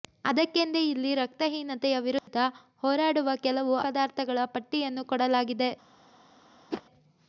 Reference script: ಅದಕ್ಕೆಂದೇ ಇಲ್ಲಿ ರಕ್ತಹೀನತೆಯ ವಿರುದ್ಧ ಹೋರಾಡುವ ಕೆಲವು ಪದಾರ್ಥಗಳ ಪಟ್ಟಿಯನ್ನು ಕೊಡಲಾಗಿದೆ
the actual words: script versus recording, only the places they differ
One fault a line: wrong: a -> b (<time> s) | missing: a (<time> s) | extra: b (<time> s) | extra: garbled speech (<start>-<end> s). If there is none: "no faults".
no faults